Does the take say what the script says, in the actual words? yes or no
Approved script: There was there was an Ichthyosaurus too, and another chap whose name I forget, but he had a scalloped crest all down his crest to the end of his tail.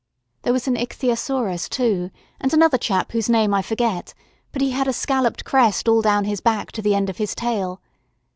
no